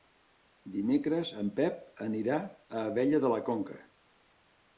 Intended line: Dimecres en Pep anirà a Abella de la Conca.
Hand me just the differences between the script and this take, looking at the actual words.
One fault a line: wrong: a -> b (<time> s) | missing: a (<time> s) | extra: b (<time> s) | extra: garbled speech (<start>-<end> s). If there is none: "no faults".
no faults